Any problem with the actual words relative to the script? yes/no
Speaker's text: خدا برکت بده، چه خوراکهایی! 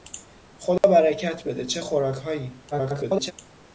yes